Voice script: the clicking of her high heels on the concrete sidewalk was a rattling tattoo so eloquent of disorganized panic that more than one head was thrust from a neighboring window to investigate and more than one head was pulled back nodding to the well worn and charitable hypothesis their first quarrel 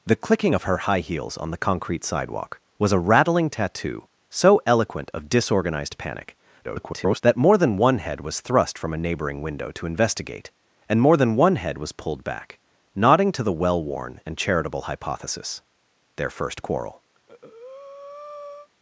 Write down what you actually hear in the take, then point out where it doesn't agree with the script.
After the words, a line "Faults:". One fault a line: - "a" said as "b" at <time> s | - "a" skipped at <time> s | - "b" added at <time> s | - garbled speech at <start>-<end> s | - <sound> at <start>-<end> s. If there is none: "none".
the clicking of her high heels on the concrete sidewalk was a rattling tattoo so eloquent of disorganized panic [garbled] that more than one head was thrust from a neighboring window to investigate and more than one head was pulled back nodding to the well worn and charitable hypothesis their first quarrel
Faults:
- garbled speech at 6.6-7.2 s
- breath at 17.1-18.7 s